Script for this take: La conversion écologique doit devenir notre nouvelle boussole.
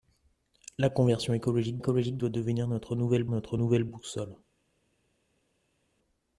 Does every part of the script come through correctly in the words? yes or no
no